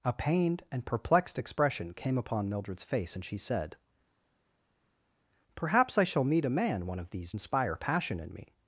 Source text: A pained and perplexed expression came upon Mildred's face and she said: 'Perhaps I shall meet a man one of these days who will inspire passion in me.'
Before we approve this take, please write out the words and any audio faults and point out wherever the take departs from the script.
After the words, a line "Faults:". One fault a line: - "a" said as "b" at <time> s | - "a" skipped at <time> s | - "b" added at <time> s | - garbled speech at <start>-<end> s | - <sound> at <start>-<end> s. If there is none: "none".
A pained and perplexed expression came upon Mildred's face and she said: 'Perhaps I shall meet a man one of these inspire passion in me.'
Faults:
- "days who will" skipped at 7.3 s